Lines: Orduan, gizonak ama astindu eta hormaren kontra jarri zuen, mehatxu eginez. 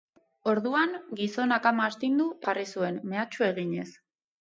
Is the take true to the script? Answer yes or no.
no